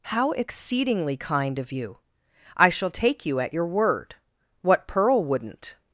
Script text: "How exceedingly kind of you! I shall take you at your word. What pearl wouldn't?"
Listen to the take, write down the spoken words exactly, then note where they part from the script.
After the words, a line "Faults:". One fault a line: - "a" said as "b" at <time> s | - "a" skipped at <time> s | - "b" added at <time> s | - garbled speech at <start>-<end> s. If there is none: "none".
"How exceedingly kind of you! I shall take you at your word. What pearl wouldn't?"
Faults:
none